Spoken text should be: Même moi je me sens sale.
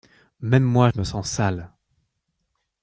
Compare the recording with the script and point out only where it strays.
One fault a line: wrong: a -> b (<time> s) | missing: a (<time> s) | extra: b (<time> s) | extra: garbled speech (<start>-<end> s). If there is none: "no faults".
no faults